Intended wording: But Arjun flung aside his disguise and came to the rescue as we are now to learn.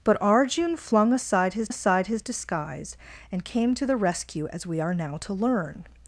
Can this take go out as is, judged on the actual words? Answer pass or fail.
fail